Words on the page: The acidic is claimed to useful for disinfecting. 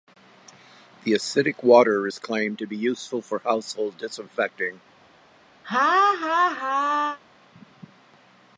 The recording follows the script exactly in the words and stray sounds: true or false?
false